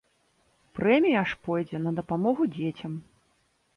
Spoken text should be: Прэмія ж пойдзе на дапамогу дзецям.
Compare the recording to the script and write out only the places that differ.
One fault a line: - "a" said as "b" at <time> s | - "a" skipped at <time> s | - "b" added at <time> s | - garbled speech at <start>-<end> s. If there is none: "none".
none